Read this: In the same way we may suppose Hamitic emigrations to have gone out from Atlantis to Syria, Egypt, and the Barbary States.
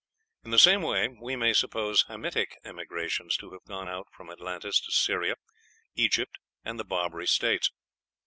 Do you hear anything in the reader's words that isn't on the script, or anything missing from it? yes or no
no